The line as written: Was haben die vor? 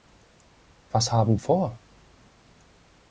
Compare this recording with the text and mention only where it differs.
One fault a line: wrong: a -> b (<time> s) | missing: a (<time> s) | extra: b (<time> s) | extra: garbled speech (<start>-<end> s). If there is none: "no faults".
missing: die (1.4 s)